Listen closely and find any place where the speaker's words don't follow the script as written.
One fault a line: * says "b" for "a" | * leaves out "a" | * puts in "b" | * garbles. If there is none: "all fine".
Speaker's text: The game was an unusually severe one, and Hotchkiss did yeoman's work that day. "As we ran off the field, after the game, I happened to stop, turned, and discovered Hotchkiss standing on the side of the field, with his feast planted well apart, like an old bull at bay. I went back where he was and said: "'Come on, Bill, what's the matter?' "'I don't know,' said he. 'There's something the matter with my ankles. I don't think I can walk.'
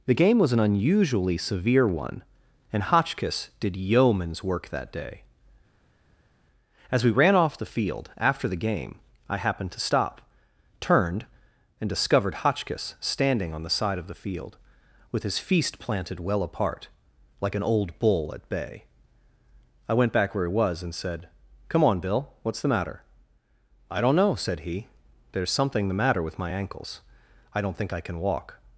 all fine